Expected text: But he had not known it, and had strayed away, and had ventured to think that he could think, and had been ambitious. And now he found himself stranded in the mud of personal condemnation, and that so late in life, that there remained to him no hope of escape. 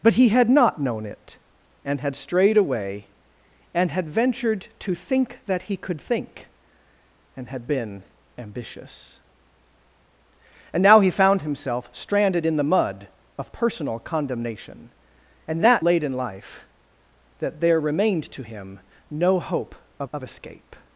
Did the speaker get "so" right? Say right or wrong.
wrong